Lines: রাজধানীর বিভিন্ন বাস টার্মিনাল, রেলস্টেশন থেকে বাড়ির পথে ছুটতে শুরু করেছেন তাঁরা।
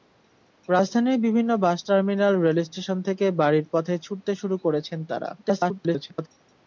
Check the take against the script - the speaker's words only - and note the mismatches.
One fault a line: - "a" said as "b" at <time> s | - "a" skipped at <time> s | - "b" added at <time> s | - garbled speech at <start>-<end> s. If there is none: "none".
- garbled speech at 5.4-6.3 s